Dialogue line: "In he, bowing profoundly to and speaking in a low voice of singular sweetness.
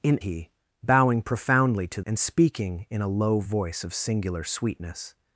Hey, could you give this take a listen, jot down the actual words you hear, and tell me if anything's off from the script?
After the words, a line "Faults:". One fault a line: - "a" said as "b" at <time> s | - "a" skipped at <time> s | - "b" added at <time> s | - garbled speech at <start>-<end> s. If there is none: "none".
"In he, bowing profoundly to and speaking in a low voice of singular sweetness.
Faults:
none